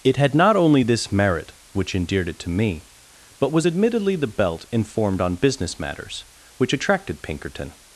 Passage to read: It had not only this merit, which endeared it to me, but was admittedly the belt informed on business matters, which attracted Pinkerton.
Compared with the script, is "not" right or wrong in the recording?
right